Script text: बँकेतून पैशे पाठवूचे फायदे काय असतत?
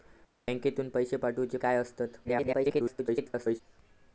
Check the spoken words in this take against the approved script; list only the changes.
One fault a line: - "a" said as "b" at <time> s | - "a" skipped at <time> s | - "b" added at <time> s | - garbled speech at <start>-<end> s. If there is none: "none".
- "फायदे" skipped at 1.6 s
- garbled speech at 2.2-3.6 s